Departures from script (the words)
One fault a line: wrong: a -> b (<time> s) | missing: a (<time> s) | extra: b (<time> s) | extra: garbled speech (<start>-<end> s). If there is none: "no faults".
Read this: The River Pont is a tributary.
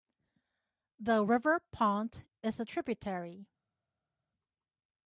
no faults